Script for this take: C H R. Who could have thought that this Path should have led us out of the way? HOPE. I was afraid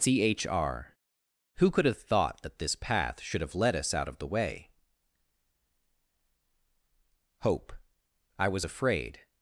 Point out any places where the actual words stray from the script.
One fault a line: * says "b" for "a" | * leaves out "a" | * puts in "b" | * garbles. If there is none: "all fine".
all fine